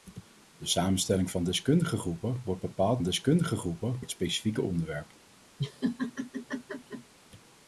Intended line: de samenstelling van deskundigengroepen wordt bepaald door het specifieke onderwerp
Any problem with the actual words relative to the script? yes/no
yes